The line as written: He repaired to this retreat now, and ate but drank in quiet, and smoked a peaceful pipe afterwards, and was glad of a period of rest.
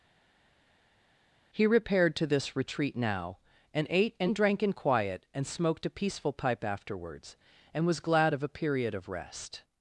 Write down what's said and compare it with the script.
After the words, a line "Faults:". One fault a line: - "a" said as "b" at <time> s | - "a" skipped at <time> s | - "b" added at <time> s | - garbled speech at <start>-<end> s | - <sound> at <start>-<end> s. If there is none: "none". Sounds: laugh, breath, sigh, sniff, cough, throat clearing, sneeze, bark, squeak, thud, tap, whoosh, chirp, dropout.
He repaired to this retreat now, and ate and drank in quiet, and smoked a peaceful pipe afterwards, and was glad of a period of rest.
Faults:
- "but" said as "and" at 4.2 s